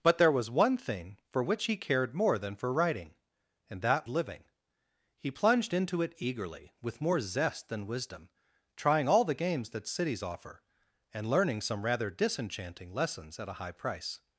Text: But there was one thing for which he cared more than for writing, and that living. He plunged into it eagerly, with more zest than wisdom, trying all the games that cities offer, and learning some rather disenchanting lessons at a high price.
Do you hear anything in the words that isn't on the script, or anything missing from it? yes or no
no